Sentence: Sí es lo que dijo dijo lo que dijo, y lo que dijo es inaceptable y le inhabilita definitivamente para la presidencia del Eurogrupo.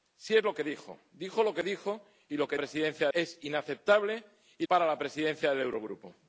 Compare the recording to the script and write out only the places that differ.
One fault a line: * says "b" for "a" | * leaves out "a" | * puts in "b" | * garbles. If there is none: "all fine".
* says "presidencia" for "dijo"
* leaves out "le inhabilita definitivamente"